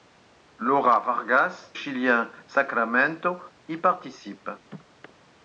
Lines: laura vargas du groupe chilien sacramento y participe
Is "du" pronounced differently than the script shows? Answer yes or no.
yes